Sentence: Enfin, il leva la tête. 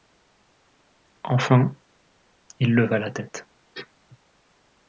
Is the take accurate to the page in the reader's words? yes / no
yes